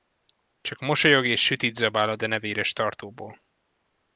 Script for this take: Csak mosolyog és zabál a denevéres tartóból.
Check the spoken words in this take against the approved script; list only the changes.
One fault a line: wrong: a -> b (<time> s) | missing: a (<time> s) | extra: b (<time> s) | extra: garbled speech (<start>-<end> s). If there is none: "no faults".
extra: sütit (1.4 s)